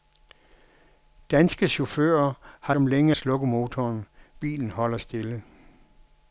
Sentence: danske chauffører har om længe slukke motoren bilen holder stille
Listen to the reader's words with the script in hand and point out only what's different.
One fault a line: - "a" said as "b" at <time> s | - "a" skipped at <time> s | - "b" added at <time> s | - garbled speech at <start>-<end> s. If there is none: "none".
none